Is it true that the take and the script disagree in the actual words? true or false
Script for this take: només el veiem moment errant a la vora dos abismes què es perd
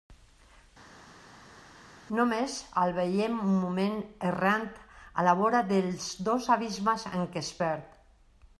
true